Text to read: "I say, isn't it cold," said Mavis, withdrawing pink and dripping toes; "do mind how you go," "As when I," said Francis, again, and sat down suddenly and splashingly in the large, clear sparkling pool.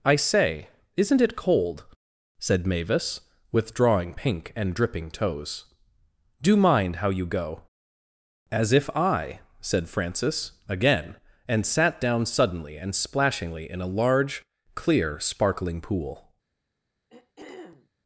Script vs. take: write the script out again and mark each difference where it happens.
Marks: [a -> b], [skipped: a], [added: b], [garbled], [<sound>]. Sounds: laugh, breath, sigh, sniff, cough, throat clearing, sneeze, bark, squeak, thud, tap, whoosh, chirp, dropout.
"I say, isn't it cold," said Mavis, withdrawing pink and dripping toes; "do mind how you go," "As [when -> if] I," said Francis, again, and sat down suddenly and splashingly in [the -> a] large, clear sparkling pool. [throat clearing]